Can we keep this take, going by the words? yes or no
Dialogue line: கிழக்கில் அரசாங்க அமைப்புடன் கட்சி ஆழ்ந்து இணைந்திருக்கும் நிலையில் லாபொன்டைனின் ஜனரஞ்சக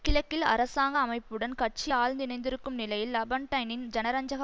yes